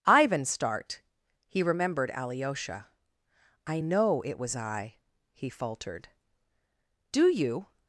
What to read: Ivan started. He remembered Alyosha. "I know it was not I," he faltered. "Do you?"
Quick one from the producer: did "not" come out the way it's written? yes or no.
no